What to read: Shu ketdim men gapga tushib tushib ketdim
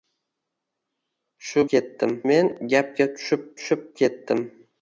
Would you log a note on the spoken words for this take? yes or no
no